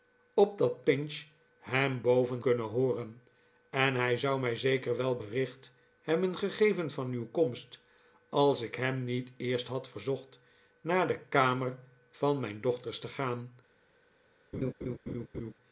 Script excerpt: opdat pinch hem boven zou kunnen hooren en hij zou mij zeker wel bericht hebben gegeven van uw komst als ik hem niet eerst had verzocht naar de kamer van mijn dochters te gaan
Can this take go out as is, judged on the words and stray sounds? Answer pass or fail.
fail